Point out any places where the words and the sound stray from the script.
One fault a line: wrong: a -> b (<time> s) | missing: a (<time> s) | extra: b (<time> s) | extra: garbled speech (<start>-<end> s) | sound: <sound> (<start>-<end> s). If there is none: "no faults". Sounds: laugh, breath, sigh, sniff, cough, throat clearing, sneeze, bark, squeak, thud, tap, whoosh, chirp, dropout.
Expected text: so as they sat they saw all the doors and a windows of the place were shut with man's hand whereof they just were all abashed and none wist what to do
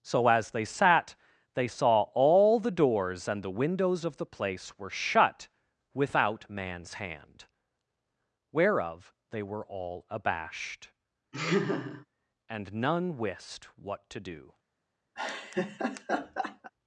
wrong: a -> the (3.4 s)
wrong: with -> without (5.9 s)
missing: just (9.4 s)
sound: laugh (11.3-12.1 s)
sound: laugh (15.2-16.7 s)